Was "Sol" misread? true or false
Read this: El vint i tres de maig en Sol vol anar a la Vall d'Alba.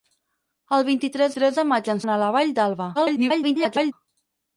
true